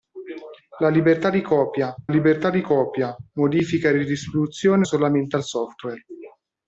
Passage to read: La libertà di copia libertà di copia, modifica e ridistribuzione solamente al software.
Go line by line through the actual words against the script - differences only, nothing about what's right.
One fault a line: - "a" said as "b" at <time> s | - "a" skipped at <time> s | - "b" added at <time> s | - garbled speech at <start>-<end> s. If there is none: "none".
none